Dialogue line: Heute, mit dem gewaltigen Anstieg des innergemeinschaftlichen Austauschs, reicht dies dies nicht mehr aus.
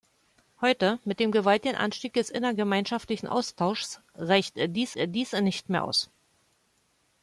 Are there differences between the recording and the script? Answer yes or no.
no